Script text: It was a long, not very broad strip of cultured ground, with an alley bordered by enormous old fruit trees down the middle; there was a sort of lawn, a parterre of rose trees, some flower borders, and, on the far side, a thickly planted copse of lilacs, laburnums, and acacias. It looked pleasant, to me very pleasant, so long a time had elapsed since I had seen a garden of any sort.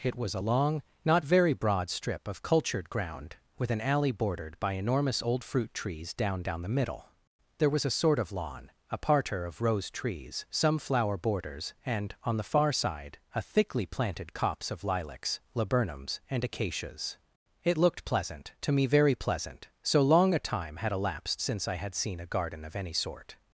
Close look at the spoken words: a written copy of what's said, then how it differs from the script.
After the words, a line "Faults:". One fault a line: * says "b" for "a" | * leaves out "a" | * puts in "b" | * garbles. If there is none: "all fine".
It was a long, not very broad strip of cultured ground, with an alley bordered by enormous old fruit trees down down the middle; there was a sort of lawn, a parterre of rose trees, some flower borders, and, on the far side, a thickly planted copse of lilacs, laburnums, and acacias. It looked pleasant, to me very pleasant, so long a time had elapsed since I had seen a garden of any sort.
Faults:
* puts in "down"